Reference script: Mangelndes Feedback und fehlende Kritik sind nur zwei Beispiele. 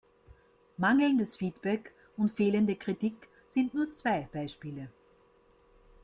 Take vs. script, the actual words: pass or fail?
pass